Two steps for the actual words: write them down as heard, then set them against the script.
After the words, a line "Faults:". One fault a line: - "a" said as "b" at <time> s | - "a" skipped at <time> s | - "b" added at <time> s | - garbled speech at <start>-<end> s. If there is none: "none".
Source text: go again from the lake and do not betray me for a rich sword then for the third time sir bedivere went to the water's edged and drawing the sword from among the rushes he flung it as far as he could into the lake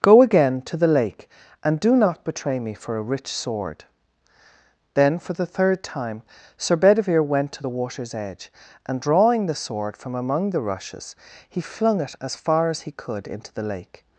go again to the lake and do not betray me for a rich sword then for the third time sir bedivere went to the water's edge and drawing the sword from among the rushes he flung it as far as he could into the lake
Faults:
- "from" said as "to" at 0.6 s
- "edged" said as "edge" at 8.1 s